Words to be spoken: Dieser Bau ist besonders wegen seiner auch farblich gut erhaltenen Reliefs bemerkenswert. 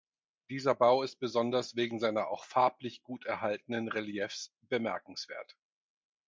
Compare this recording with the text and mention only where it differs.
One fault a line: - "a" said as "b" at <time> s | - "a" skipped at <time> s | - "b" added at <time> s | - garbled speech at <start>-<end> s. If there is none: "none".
none